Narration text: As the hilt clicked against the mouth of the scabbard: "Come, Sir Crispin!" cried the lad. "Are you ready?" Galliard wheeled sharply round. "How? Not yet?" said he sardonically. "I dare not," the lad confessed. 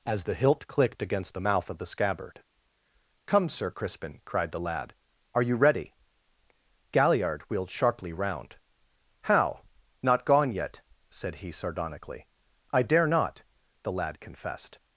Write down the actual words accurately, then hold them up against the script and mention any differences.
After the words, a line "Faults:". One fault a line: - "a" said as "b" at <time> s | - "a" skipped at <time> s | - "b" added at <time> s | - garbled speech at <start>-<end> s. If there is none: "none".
As the hilt clicked against the mouth of the scabbard: "Come, Sir Crispin!" cried the lad. "Are you ready?" Galliard wheeled sharply round. "How? Not gone yet?" said he sardonically. "I dare not," the lad confessed.
Faults:
- "gone" added at 10.2 s